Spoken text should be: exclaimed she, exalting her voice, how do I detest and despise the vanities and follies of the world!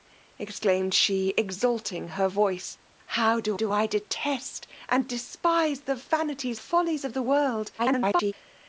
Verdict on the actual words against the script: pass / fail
fail